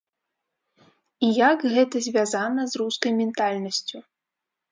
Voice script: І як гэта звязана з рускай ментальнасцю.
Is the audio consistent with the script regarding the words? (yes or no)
yes